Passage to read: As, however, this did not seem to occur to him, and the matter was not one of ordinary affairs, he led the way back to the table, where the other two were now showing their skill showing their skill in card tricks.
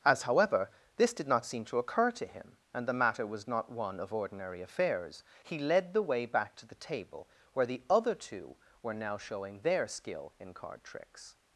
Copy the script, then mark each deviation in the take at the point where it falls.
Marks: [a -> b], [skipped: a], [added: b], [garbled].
As, however, this did not seem to occur to him, and the matter was not one of ordinary affairs, he led the way back to the table, where the other two were now showing their skill [skipped: showing their skill] in card tricks.